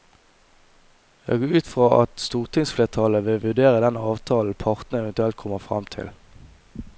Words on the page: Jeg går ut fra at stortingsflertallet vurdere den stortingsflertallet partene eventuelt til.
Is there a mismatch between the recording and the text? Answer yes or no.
yes